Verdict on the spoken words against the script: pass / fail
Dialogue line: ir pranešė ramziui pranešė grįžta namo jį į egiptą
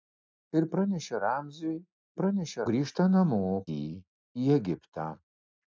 pass